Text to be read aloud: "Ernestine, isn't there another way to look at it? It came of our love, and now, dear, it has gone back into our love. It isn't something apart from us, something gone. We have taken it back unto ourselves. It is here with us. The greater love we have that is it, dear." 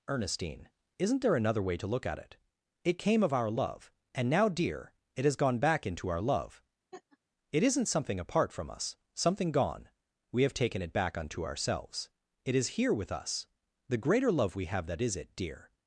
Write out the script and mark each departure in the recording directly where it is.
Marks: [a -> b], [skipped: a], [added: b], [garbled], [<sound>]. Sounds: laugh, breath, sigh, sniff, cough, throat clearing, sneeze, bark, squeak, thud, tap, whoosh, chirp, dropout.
"Ernestine, isn't there another way to look at it? It came of our love, and now, dear, it has gone back into our love. [laugh] It isn't something apart from us, something gone. We have taken it back unto ourselves. It is here with us. The greater love we have that is it, dear."